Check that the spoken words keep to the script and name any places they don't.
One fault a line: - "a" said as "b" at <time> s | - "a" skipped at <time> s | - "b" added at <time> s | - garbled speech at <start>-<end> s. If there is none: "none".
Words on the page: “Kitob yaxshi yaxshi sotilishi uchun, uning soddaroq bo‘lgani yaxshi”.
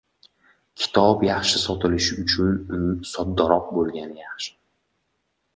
- "yaxshi" skipped at 1.6 s